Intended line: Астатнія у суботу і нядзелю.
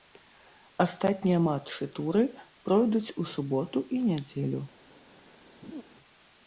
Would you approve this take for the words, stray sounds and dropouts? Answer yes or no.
no